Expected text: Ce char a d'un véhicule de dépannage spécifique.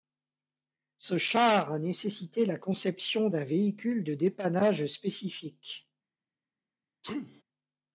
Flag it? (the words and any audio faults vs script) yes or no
yes